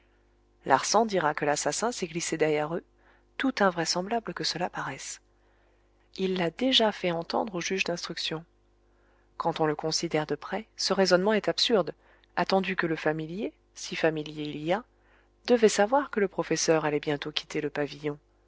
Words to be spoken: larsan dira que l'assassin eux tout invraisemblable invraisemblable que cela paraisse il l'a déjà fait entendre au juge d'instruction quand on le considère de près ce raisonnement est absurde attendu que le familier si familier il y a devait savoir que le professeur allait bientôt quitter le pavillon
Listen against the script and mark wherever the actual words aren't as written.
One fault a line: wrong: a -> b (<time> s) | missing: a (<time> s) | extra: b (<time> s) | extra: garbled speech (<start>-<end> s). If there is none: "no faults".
extra: s'est glissé derrière (1.9 s)
missing: invraisemblable (4.3 s)